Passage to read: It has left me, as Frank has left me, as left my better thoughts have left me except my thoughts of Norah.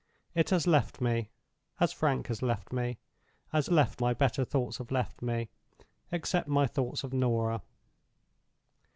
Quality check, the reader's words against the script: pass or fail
pass